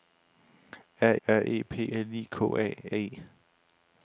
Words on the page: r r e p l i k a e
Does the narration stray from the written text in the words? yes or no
no